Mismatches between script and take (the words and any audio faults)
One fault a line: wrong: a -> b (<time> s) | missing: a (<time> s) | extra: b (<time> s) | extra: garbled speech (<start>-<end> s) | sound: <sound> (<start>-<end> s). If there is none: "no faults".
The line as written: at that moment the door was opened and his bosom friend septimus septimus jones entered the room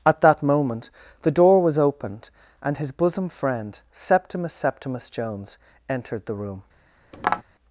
sound: tap (7.1-7.4 s)